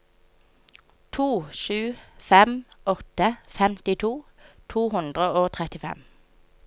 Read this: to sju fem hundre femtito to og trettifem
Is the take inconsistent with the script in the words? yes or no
yes